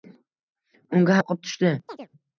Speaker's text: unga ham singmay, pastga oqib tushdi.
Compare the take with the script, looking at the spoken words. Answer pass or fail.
fail